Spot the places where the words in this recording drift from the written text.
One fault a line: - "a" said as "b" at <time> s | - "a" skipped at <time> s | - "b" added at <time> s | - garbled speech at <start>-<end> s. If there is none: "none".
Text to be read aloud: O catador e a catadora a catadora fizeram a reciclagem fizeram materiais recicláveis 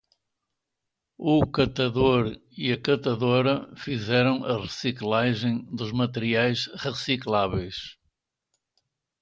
- "a catadora" skipped at 3.8 s
- "fizeram" said as "dos" at 5.7 s